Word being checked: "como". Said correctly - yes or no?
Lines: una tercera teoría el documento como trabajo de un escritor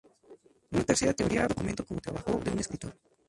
yes